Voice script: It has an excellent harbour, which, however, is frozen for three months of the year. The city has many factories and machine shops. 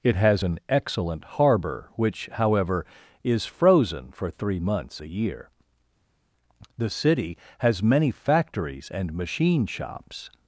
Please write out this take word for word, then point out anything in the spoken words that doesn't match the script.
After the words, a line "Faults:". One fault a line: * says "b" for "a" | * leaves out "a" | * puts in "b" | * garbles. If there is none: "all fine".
It has an excellent harbour, which, however, is frozen for three months the year. The city has many factories and machine shops.
Faults:
* leaves out "of"